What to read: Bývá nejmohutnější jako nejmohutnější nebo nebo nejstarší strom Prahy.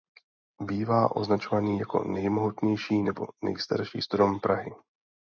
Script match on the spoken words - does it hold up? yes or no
no